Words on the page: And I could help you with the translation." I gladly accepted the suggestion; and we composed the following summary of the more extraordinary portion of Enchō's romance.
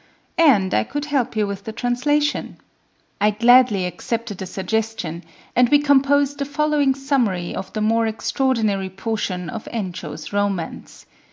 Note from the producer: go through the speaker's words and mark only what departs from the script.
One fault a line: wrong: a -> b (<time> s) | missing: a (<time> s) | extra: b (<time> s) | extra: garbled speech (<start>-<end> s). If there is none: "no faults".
no faults